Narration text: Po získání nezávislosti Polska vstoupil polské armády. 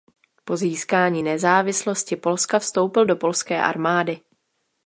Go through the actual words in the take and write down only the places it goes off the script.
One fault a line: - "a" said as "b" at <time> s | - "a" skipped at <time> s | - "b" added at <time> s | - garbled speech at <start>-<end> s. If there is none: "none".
- "do" added at 3.0 s